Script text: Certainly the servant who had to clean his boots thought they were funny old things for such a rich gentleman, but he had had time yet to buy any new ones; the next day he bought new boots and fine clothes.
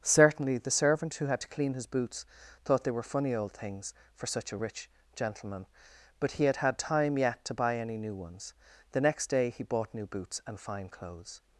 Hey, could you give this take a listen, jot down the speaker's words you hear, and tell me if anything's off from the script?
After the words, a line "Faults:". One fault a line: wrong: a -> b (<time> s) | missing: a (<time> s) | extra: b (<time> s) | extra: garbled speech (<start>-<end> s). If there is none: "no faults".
Certainly the servant who had to clean his boots thought they were funny old things for such a rich gentleman, but he had had time yet to buy any new ones; the next day he bought new boots and fine clothes.
Faults:
no faults